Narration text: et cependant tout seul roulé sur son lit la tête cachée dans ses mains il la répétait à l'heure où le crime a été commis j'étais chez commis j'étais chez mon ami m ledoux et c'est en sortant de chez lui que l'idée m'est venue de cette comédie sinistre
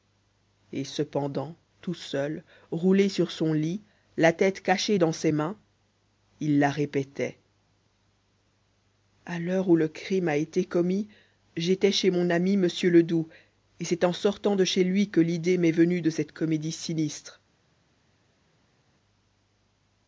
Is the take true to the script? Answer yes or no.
no